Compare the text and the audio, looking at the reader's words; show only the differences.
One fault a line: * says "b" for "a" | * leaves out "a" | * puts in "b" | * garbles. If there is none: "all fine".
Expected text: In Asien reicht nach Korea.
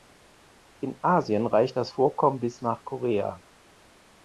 * puts in "das Vorkommen bis"